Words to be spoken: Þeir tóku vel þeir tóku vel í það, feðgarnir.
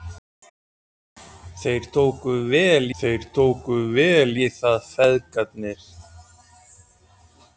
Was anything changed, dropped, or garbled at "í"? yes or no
no